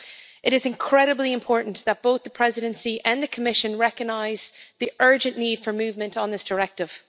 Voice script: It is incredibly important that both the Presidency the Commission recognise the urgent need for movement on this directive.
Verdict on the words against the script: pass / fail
fail